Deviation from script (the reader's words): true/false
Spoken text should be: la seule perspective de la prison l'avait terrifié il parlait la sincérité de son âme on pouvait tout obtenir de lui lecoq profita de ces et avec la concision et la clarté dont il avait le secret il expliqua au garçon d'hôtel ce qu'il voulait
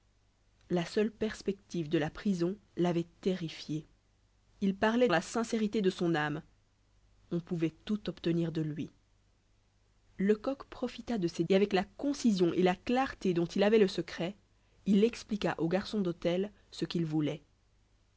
false